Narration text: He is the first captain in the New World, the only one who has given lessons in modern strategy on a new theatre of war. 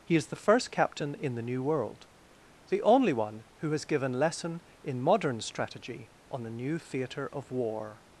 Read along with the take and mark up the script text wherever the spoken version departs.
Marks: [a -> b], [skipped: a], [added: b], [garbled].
He is the first captain in the New World, the only one who has given [lessons -> lesson] in modern strategy on a new theatre of war.